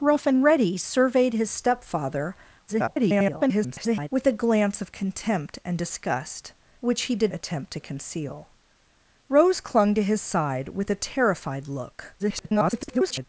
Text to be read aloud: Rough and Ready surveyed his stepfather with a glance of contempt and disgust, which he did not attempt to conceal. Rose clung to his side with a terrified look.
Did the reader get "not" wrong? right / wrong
wrong